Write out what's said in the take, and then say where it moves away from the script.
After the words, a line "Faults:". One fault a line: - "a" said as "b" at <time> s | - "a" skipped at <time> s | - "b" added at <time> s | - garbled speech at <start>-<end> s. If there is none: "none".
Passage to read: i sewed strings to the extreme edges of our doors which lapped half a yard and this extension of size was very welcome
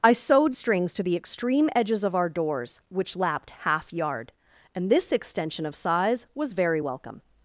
i sewed strings to the extreme edges of our doors which lapped half yard and this extension of size was very welcome
Faults:
- "a" skipped at 3.9 s